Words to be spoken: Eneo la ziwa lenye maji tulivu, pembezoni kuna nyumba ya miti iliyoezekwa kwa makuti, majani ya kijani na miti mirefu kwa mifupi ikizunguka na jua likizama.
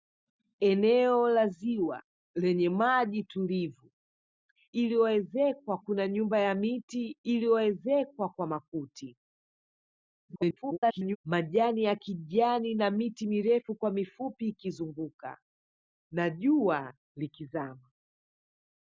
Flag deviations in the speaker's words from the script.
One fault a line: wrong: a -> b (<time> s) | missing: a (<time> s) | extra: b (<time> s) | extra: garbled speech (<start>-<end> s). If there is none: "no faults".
wrong: pembezoni -> iliyoezekwa (4.7 s)
extra: garbled speech (10.3-11.2 s)